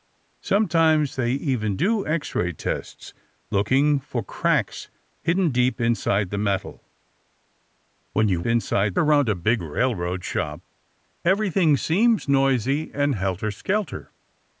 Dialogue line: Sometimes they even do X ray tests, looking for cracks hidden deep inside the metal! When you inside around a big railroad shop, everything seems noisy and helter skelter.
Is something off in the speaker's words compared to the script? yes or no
no